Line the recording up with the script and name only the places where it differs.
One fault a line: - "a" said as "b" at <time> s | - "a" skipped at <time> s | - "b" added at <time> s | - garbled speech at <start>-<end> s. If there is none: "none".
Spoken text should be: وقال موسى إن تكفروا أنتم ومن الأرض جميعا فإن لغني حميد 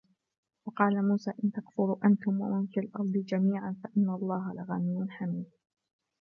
- "في" added at 2.7 s
- "الله" added at 4.1 s